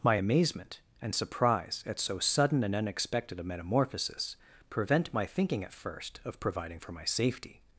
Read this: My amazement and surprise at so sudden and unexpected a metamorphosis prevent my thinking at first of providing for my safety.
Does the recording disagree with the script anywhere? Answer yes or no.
no